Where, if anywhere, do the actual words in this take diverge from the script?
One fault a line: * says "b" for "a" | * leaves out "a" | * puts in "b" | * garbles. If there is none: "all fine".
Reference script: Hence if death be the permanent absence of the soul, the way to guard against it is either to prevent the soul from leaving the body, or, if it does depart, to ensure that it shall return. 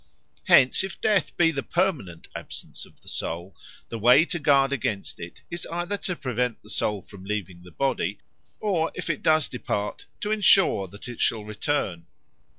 all fine